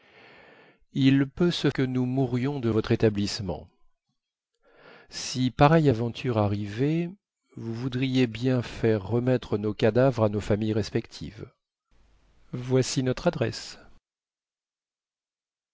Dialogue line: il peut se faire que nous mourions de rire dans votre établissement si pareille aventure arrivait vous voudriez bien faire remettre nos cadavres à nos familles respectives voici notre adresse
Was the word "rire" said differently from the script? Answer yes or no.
yes